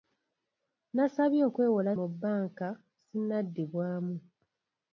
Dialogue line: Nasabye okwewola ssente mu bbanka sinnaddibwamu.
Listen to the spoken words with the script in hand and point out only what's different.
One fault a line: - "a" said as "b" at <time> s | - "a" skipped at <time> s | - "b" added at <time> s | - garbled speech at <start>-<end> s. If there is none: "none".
- "ssente" skipped at 1.9 s